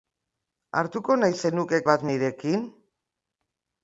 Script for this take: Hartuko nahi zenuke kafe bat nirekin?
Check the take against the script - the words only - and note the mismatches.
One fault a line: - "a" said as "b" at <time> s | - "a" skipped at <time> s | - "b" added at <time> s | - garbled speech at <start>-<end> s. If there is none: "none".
- "kafe" skipped at 1.8 s